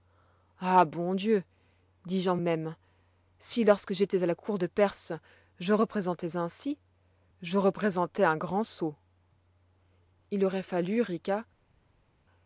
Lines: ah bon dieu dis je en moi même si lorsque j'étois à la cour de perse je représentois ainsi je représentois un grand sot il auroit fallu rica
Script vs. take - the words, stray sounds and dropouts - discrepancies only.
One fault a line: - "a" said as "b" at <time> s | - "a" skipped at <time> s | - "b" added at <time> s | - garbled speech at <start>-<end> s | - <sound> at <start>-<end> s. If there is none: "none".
- "moi" skipped at 2.4 s